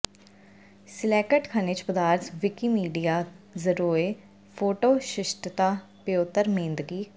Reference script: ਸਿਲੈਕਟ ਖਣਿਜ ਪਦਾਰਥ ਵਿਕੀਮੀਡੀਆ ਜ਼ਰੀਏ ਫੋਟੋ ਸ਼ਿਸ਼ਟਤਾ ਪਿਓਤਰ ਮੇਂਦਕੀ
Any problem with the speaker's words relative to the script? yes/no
no